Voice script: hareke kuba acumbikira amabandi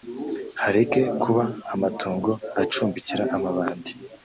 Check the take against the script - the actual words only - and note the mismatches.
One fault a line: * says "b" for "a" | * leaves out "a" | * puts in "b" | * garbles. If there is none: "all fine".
* puts in "amatongo"